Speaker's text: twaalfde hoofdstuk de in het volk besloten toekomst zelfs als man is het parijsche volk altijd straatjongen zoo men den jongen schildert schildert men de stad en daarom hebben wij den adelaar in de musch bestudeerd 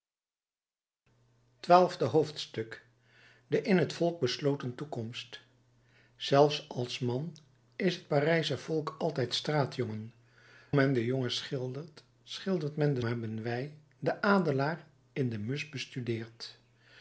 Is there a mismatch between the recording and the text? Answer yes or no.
yes